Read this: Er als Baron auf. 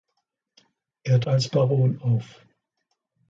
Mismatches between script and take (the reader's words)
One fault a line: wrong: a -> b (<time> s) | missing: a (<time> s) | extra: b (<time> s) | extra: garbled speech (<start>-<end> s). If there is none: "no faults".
no faults